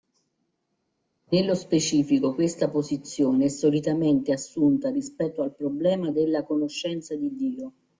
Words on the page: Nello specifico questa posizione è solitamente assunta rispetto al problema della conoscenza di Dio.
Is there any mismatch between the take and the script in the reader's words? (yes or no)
no